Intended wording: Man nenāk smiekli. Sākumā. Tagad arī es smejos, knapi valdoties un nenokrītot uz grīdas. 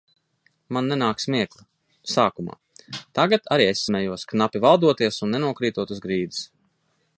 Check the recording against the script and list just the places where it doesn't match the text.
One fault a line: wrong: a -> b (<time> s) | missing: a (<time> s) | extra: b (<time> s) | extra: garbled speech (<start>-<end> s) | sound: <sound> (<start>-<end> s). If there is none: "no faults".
no faults